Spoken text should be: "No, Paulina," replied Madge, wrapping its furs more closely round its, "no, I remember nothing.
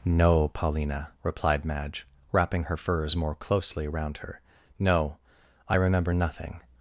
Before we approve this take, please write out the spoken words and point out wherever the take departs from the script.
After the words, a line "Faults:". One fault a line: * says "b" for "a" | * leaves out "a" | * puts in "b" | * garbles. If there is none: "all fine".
"No, Paulina," replied Madge, wrapping her furs more closely round her, "no, I remember nothing.
Faults:
* says "her" for "its"
* says "her" for "its"